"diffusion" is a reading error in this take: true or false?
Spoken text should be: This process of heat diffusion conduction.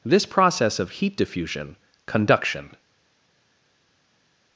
false